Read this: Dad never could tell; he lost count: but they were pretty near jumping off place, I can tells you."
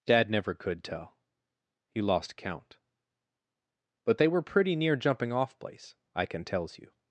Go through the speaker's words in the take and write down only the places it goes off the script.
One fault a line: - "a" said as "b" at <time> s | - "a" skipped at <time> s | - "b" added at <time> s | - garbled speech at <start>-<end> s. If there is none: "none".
none